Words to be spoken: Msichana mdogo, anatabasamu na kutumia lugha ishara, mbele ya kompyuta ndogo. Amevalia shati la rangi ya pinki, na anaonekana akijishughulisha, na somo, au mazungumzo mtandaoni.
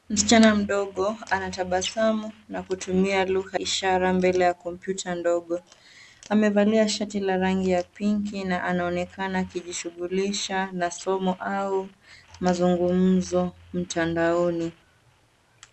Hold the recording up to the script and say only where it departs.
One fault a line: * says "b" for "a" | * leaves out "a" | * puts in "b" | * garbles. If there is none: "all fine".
all fine